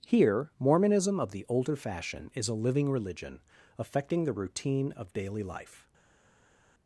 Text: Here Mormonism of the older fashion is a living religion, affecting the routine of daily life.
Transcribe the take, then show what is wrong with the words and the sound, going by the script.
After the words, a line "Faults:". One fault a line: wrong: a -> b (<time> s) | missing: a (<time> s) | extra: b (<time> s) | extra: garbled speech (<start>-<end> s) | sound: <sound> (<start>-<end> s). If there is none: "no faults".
Here Mormonism of the older fashion is a living religion, affecting the routine of daily life.
Faults:
no faults